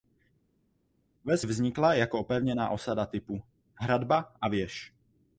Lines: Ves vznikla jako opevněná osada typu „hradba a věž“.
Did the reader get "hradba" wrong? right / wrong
right